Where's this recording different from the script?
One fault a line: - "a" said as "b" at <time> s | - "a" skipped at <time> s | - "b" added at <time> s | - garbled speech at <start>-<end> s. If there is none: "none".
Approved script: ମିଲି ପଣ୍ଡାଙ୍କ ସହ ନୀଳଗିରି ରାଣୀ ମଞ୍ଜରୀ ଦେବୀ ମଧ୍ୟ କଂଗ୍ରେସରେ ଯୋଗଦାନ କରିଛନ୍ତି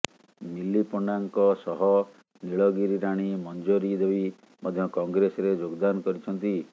none